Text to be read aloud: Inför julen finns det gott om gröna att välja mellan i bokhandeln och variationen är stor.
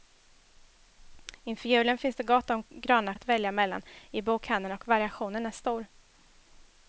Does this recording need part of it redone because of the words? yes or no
no